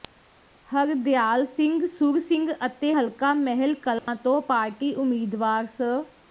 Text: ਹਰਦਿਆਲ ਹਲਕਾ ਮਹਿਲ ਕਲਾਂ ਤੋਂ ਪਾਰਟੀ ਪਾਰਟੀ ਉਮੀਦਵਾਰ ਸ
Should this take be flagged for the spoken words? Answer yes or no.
yes